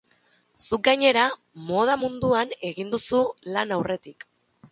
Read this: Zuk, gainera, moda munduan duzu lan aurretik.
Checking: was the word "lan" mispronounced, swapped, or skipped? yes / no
no